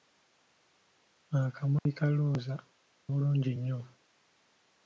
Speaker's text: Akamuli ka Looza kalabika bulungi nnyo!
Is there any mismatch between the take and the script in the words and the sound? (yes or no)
yes